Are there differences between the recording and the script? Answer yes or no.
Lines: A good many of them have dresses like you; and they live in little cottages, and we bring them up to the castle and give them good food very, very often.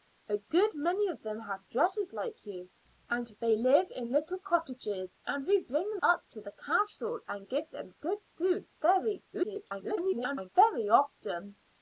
yes